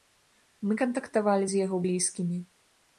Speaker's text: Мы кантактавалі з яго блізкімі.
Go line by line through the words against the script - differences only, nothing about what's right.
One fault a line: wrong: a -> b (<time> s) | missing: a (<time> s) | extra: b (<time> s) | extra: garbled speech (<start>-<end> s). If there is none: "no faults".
no faults